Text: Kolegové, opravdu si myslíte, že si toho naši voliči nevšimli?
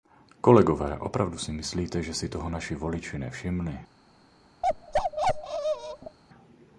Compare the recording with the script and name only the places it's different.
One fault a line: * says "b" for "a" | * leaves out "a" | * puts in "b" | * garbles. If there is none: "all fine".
all fine